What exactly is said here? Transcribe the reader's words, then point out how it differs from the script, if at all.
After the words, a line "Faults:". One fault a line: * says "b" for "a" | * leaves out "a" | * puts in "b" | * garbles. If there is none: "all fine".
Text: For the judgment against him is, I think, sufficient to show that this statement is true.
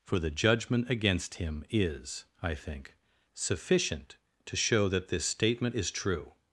For the judgment against him is, I think, sufficient to show that this statement is true.
Faults:
all fine